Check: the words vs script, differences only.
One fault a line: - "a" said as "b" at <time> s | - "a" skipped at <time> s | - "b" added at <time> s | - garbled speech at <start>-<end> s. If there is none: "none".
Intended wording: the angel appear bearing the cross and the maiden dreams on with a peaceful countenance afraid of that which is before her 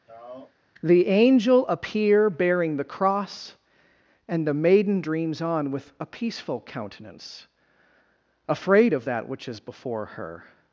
none